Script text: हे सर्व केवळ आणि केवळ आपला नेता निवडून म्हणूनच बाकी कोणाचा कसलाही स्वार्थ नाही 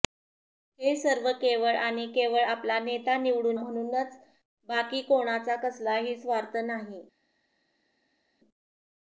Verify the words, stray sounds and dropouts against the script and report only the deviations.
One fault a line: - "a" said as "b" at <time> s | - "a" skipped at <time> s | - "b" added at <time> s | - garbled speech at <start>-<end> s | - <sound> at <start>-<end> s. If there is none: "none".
none